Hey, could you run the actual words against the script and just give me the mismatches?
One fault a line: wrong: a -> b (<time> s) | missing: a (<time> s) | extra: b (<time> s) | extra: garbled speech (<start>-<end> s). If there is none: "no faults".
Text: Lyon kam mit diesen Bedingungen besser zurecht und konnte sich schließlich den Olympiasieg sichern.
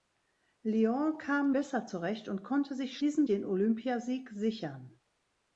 missing: mit diesen Bedingungen (1.6 s)
wrong: schließlich -> diesen (3.0 s)